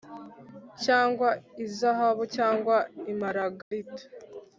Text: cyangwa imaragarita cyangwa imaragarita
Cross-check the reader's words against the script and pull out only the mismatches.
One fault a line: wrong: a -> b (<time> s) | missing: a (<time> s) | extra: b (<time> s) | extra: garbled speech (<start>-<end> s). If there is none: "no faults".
wrong: imaragarita -> izahabu (1.6 s)